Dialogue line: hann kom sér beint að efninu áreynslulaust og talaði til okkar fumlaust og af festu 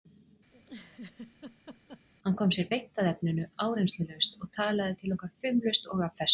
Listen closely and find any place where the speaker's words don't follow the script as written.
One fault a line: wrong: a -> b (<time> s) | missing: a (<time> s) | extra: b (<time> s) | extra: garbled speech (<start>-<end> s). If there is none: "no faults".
no faults